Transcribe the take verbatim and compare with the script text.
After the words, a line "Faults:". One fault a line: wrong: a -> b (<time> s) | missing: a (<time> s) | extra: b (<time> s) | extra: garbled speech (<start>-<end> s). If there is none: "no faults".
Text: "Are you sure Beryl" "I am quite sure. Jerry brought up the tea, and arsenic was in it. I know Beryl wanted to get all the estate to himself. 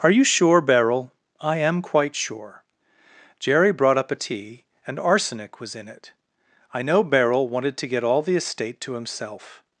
"Are you sure Beryl" "I am quite sure. Jerry brought up a tea, and arsenic was in it. I know Beryl wanted to get all the estate to himself.
Faults:
wrong: the -> a (4.1 s)